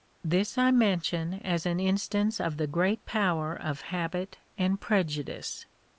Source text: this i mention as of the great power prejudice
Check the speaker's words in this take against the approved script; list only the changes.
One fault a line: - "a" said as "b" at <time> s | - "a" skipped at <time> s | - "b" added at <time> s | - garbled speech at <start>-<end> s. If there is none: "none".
- "an instance" added at 1.7 s
- "of habit and" added at 3.5 s